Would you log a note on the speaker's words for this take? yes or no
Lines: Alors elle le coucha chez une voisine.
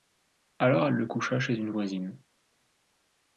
no